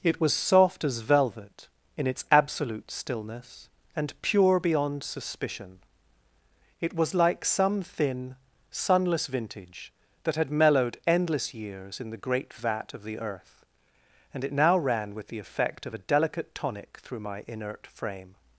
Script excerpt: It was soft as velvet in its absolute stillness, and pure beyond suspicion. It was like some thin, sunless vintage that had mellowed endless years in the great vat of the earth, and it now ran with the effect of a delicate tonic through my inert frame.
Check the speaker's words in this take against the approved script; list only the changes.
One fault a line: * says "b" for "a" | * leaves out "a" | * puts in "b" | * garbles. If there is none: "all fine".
all fine